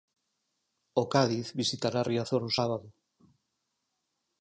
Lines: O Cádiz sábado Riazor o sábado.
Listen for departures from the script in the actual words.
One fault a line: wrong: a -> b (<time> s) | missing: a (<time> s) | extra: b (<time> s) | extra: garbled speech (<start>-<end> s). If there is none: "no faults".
wrong: sábado -> visitará (1.6 s)